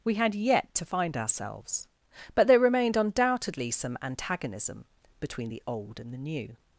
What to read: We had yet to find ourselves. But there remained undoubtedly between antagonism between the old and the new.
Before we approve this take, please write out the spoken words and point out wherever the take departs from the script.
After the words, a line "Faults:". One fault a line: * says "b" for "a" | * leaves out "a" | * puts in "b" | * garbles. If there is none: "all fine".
We had yet to find ourselves. But there remained undoubtedly some antagonism between the old and the new.
Faults:
* says "some" for "between"